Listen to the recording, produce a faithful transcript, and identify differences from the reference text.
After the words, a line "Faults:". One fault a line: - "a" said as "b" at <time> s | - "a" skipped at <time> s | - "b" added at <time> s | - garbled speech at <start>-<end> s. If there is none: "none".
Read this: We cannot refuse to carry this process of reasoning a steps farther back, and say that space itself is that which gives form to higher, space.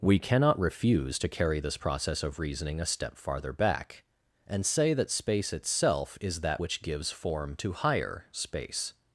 We cannot refuse to carry this process of reasoning a step farther back, and say that space itself is that which gives form to higher, space.
Faults:
- "steps" said as "step" at 2.8 s